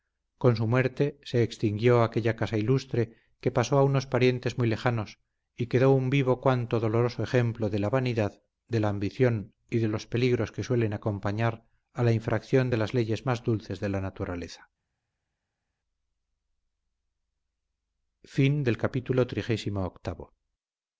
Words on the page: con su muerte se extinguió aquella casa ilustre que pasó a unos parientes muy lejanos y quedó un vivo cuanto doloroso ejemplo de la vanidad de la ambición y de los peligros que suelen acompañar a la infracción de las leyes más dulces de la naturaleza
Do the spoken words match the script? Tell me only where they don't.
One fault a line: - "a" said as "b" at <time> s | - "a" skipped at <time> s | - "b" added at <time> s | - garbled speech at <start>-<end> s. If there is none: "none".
none